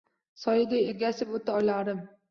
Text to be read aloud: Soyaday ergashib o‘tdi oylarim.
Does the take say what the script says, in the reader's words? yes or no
yes